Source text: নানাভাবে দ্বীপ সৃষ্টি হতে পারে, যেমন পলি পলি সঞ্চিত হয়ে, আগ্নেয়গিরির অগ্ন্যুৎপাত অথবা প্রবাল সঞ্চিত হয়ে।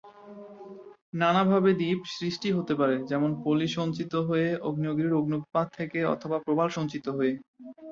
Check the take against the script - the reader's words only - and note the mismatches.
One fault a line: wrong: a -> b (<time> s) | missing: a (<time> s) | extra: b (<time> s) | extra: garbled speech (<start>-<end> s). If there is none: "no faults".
missing: পলি (3.7 s)
extra: থেকে (5.8 s)